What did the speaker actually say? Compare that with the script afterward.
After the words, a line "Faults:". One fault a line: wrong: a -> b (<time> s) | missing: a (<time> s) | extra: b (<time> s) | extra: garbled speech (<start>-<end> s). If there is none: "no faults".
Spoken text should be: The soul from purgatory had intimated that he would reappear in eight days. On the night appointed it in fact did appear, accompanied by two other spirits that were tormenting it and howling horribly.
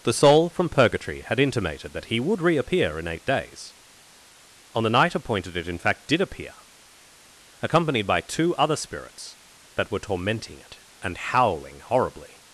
The soul from purgatory had intimated that he would reappear in eight days. On the night appointed it in fact did appear, accompanied by two other spirits that were tormenting it and howling horribly.
Faults:
no faults